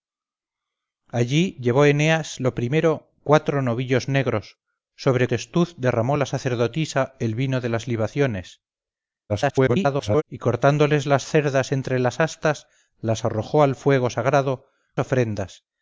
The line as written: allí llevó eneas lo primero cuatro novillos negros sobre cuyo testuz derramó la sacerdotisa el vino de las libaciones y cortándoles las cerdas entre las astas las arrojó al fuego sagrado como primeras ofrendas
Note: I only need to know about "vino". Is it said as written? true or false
true